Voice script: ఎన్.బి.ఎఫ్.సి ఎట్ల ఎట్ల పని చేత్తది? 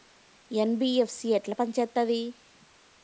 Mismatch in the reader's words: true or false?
true